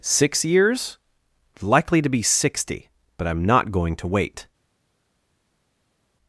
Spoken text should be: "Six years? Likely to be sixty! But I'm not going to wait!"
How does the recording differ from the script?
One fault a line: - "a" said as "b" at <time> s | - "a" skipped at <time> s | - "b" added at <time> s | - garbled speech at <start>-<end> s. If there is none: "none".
none